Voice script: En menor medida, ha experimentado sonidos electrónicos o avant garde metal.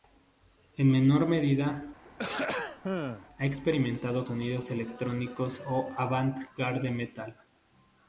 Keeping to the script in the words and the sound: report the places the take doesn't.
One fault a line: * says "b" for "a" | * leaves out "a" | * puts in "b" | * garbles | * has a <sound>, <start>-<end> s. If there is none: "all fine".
* has a throat clearing, 2.0-3.3 s